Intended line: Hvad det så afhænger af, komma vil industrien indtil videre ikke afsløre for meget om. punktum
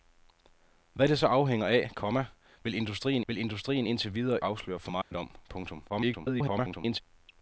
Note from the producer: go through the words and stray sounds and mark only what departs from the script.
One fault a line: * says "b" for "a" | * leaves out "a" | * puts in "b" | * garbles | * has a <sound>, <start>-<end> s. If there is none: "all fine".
* puts in "vil industrien"
* leaves out "ikke"
* has a dropout, 5.0-5.1 s
* garbles